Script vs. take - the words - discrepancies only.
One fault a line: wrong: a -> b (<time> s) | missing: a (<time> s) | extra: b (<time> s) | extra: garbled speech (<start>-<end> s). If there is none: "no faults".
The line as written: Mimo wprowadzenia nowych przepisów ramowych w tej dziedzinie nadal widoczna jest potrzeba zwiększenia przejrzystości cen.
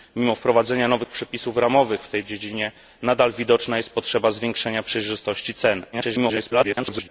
extra: garbled speech (5.9-7.1 s)